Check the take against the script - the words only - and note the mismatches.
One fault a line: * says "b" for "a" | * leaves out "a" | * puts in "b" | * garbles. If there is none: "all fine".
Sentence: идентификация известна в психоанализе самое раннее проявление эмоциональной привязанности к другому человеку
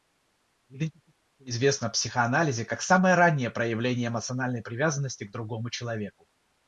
* puts in "как"